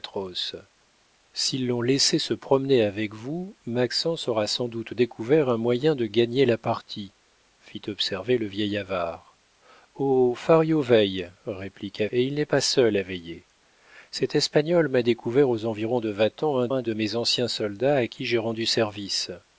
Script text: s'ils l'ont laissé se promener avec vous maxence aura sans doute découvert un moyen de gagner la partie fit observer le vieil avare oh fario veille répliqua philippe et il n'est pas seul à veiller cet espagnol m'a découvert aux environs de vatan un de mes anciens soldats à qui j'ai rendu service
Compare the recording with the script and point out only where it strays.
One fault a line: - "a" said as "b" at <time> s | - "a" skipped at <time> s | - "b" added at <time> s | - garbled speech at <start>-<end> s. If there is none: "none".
- "philippe" skipped at 12.1 s
- "un" added at 16.7 s